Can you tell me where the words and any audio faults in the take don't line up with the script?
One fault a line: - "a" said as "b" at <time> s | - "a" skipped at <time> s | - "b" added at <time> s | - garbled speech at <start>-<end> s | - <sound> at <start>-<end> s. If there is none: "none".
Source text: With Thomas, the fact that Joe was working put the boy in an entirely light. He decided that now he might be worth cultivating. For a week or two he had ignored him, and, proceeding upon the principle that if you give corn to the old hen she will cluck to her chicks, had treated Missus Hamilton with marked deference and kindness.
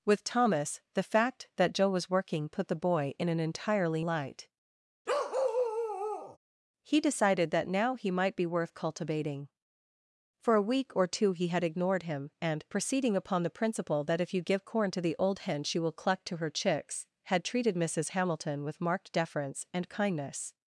- bark at 5.1-6.4 s